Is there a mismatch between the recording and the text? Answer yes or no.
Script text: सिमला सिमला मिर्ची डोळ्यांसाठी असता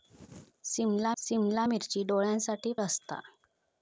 no